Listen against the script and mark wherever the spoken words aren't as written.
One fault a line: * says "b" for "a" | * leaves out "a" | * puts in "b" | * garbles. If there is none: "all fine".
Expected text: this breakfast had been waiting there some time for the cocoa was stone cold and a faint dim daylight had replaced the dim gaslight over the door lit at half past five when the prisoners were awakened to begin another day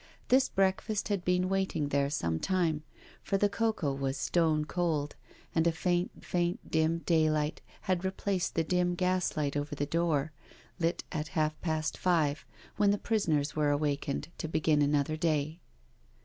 * puts in "faint"